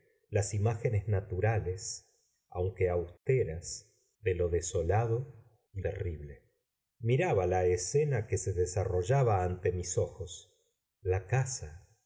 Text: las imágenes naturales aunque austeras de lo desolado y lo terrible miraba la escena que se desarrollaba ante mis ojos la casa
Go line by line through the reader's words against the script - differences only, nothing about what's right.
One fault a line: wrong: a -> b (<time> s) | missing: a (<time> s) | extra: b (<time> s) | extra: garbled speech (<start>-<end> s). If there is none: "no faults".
missing: lo (5.8 s)